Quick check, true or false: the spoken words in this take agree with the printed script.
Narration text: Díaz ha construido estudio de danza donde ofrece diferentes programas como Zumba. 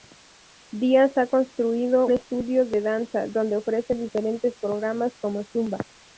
true